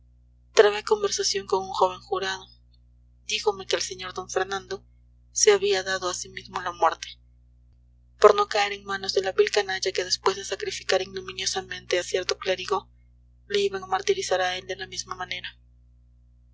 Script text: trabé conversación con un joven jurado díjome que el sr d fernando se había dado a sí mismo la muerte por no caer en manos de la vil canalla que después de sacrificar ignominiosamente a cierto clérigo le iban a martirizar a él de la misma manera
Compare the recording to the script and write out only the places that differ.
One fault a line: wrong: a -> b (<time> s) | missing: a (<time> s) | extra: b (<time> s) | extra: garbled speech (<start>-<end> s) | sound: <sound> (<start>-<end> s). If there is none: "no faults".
no faults